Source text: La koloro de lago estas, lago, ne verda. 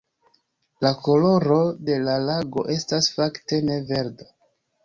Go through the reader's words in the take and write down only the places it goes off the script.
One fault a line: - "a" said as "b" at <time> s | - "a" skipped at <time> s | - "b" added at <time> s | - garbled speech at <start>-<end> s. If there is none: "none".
- "la" added at 2.0 s
- "lago" said as "fakte" at 3.2 s